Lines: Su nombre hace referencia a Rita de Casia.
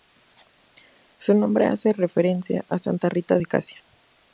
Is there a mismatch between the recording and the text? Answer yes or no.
yes